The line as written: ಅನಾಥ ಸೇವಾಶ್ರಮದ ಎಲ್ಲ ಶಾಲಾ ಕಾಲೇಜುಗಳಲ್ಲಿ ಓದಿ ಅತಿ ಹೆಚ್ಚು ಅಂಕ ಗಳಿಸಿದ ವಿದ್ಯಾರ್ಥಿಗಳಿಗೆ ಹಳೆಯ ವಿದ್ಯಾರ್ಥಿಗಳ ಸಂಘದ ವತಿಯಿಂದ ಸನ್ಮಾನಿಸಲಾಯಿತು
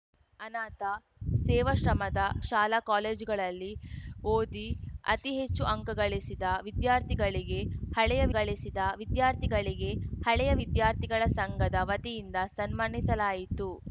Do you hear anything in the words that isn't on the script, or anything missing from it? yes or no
yes